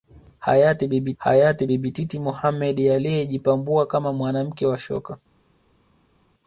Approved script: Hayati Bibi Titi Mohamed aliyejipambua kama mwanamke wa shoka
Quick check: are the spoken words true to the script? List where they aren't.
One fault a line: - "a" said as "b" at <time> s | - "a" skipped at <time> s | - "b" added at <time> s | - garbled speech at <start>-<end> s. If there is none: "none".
- "hayati Bibi" added at 1.2 s